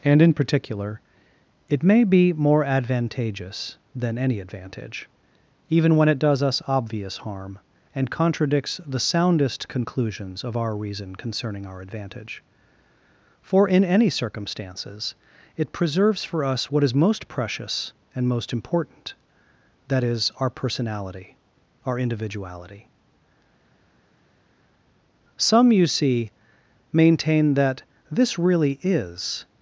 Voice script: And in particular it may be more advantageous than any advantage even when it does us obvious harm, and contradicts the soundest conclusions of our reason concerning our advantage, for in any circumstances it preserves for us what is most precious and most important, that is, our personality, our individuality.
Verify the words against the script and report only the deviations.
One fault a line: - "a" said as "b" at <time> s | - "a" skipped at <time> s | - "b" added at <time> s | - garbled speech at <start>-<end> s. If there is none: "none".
- "Some you see maintain that this really is" added at 25.4 s